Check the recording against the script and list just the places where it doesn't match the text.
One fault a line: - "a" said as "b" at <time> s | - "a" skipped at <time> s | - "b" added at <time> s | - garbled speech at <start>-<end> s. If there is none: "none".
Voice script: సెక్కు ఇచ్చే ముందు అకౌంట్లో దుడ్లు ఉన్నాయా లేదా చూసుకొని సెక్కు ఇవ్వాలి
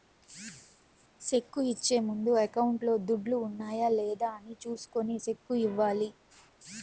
- "అని" added at 4.3 s